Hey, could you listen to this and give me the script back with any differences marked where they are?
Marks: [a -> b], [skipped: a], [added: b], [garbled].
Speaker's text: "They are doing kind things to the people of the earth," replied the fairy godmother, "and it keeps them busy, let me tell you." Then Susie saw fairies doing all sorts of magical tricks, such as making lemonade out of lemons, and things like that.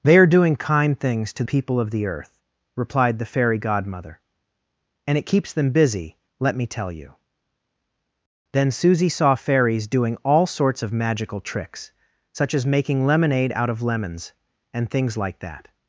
"They are doing kind things to [skipped: the] people of the earth," replied the fairy godmother, "and it keeps them busy, let me tell you." Then Susie saw fairies doing all sorts of magical tricks, such as making lemonade out of lemons, and things like that.